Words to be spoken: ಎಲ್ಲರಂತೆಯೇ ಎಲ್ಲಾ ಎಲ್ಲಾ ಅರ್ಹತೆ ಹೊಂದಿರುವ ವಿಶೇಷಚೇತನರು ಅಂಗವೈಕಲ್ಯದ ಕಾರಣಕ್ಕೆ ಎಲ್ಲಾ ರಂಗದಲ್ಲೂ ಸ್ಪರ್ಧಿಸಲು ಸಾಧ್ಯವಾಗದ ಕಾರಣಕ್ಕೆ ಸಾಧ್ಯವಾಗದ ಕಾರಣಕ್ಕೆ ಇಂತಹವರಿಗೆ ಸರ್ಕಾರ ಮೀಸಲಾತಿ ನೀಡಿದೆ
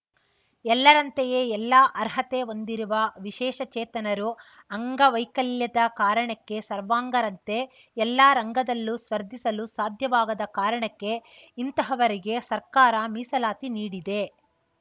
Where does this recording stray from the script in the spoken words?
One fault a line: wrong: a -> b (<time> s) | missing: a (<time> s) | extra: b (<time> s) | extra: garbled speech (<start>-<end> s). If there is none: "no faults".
missing: ಎಲ್ಲಾ (1.8 s)
extra: ಸರ್ವಾಂಗರಂತೆ (6.7 s)
missing: ಸಾಧ್ಯವಾಗದ ಕಾರಣಕ್ಕೆ (11.1 s)